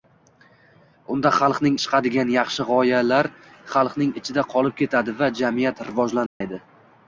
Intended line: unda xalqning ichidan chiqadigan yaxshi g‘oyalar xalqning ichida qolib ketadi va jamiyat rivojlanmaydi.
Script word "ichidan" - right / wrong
wrong